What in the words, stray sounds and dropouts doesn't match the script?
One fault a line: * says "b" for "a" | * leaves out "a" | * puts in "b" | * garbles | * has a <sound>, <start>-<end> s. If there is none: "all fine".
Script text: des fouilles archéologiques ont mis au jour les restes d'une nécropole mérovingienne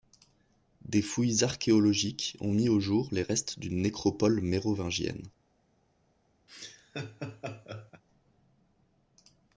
* has a laugh, 6.5-8.0 s